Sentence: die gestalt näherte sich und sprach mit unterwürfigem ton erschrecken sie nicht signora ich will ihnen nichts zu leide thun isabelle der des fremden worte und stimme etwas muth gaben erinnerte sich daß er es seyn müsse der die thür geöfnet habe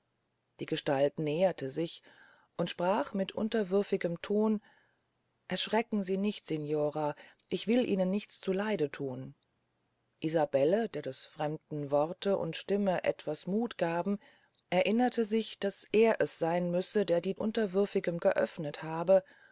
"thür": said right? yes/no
no